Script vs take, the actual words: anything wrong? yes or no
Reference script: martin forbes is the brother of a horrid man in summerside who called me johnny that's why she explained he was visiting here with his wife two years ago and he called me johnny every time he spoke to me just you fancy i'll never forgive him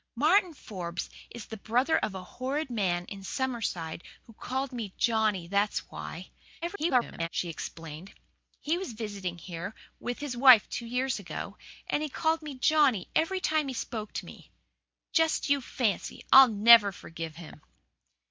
yes